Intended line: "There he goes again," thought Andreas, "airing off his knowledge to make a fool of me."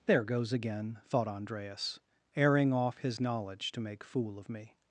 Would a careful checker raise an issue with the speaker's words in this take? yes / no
yes